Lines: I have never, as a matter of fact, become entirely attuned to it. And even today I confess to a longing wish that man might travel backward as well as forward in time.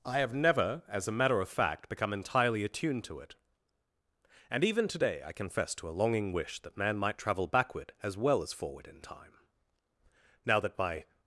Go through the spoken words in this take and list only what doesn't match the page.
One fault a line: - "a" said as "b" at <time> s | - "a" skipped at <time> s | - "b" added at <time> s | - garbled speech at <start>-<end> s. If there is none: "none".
- "Now that my" added at 10.5 s